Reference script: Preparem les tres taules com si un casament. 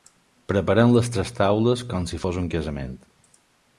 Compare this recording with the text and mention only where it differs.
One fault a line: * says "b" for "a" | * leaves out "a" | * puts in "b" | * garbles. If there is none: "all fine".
* puts in "fos"